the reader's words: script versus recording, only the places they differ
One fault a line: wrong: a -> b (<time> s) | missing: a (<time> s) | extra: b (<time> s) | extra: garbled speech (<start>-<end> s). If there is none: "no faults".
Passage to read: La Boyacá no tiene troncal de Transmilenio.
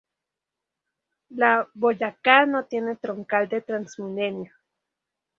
no faults